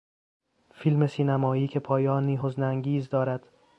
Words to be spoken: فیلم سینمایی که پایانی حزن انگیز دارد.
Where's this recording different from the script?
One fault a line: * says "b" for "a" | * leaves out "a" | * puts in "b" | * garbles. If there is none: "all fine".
all fine